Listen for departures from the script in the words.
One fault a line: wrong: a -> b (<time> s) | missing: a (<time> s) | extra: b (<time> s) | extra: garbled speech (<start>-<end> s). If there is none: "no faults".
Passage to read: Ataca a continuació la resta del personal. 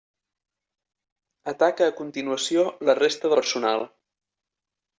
missing: del (3.4 s)